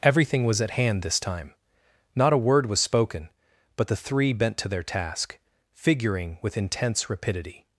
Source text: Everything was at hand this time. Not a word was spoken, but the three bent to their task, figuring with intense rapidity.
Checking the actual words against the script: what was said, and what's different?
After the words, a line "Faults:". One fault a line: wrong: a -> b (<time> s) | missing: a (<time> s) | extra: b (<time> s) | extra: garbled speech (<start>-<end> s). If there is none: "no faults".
Everything was at hand this time. Not a word was spoken, but the three bent to their task, figuring with intense rapidity.
Faults:
no faults